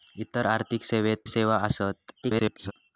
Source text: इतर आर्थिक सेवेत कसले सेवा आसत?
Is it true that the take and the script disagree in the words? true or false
true